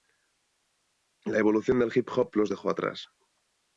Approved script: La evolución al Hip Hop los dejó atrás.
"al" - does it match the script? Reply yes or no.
no